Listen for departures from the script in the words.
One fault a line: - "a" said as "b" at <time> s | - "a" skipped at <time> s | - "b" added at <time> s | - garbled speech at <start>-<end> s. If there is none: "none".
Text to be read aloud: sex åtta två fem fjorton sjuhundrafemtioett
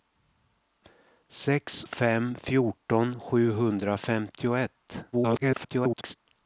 - "åtta två" skipped at 1.9 s
- garbled speech at 5.1-6.1 s